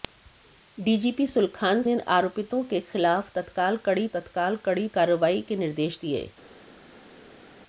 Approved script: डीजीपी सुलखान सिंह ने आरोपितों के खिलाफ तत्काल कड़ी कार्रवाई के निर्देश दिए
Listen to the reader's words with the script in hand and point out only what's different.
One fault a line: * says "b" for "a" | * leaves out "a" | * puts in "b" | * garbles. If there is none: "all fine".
* leaves out "सिंह"
* puts in "तत्काल कड़ी"